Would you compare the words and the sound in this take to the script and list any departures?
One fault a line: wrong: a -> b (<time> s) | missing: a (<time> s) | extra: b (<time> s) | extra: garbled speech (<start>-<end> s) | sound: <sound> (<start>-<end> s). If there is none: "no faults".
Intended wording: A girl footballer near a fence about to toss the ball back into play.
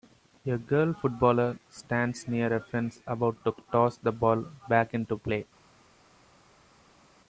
extra: stands (1.7 s)